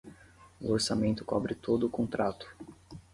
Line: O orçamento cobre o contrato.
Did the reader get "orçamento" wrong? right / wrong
right